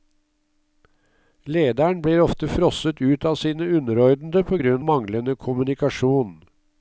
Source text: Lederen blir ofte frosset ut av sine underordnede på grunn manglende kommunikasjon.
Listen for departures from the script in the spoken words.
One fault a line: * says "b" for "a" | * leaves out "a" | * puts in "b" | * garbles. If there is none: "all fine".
all fine